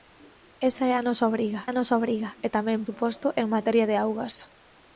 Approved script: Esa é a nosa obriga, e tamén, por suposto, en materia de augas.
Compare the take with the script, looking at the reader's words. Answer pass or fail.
fail